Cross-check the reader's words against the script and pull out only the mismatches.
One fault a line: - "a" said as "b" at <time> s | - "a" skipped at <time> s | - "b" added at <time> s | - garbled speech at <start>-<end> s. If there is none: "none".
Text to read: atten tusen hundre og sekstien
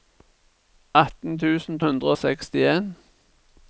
none